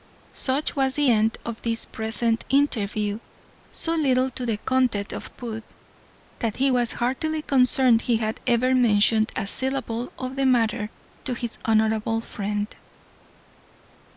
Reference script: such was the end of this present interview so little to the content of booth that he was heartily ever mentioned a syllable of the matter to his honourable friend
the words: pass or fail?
fail